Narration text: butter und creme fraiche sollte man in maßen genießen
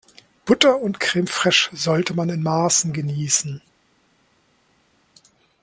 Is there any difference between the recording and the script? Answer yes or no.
no